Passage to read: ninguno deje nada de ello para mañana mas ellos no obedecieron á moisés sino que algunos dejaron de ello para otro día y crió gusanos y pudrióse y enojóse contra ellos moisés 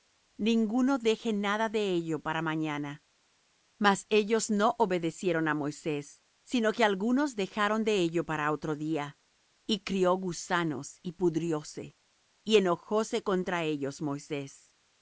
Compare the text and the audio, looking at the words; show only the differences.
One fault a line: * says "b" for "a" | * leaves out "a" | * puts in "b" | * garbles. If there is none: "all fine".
all fine